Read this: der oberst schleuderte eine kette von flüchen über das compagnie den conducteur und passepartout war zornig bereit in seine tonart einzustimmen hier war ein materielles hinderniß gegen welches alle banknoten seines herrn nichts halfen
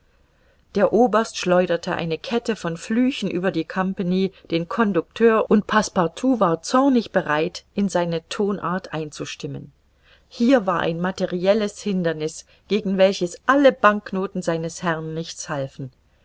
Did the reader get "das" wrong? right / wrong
wrong